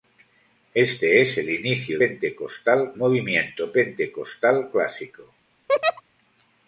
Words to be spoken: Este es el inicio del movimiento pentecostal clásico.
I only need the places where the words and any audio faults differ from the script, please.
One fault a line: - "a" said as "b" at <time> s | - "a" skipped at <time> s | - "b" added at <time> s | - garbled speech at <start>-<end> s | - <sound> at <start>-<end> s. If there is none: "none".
- "del" said as "pentecostal" at 1.9 s
- laugh at 5.7-6.0 s